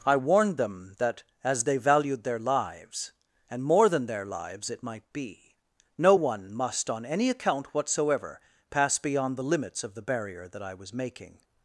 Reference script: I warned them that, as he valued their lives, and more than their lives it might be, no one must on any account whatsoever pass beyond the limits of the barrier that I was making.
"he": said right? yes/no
no